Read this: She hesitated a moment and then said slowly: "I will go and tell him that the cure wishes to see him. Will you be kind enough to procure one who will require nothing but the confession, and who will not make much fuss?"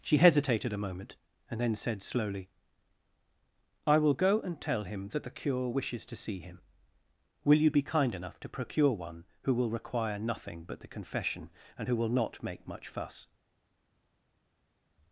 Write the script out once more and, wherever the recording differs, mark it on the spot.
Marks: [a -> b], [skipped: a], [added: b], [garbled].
She hesitated a moment and then said slowly: "I will go and tell him that the cure wishes to see him. Will you be kind enough to procure one who will require nothing but the confession, and who will not make much fuss?"